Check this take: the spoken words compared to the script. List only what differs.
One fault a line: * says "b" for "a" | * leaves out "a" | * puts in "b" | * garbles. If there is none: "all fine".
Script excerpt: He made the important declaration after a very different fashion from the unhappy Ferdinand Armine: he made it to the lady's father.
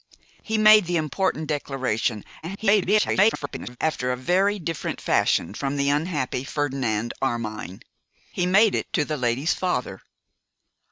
* garbles